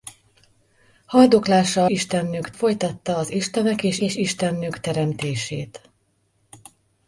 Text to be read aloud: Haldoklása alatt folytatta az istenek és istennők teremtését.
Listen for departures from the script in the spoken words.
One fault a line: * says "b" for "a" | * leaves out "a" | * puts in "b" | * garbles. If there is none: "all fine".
* says "istennők" for "alatt"
* puts in "és"